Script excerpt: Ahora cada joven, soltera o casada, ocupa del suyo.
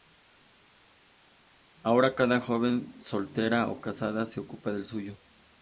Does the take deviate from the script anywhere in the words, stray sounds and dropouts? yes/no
yes